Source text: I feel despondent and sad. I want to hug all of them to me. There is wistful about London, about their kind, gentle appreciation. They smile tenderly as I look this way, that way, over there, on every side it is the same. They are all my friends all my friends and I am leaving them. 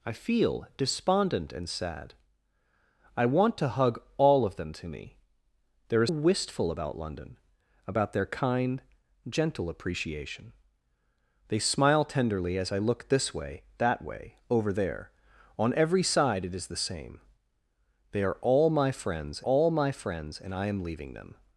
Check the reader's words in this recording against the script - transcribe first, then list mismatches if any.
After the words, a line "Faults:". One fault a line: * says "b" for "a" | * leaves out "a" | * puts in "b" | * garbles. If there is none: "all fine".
I feel despondent and sad. I want to hug all of them to me. There is wistful about London, about their kind, gentle appreciation. They smile tenderly as I look this way, that way, over there, on every side it is the same. They are all my friends all my friends and I am leaving them.
Faults:
all fine